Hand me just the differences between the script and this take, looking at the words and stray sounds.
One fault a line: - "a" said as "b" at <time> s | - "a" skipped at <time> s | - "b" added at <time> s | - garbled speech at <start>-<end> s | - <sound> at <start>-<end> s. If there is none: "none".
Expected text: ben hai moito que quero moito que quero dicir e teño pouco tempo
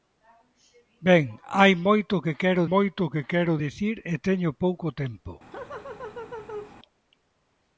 - laugh at 5.5-6.8 s